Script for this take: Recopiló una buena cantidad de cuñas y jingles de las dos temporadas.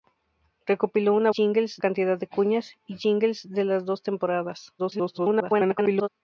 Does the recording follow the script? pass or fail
fail